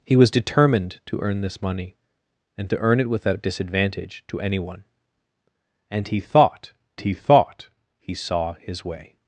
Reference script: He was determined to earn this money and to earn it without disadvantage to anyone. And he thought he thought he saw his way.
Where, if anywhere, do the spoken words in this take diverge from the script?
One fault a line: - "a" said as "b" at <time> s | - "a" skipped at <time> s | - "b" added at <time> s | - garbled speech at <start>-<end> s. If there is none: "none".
none